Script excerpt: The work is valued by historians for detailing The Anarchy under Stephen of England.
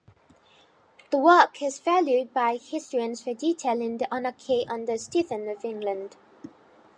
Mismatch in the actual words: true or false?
false